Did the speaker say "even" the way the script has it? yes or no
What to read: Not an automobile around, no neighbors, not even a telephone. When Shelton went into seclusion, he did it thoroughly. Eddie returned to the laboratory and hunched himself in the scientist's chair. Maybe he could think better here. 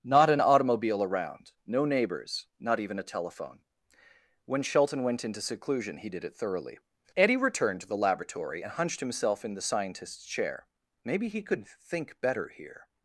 yes